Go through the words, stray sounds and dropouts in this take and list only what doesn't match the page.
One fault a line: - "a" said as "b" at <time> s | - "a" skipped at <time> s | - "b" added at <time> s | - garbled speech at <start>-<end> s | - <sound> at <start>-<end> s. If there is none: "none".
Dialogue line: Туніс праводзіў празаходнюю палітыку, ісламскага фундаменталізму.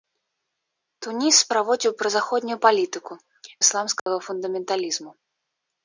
- dropout at 4.0-4.1 s